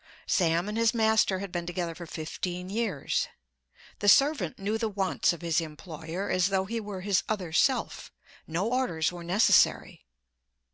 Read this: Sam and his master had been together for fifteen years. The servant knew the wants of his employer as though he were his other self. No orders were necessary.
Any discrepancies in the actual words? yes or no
no